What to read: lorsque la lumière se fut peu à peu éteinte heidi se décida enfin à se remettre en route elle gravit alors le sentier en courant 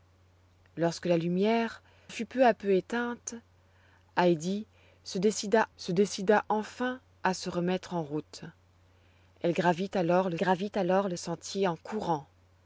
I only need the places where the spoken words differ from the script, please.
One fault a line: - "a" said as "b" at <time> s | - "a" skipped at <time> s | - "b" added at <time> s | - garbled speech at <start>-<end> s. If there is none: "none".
- "se" skipped at 1.8 s
- "se décida" added at 5.7 s
- "gravit alors le" added at 10.3 s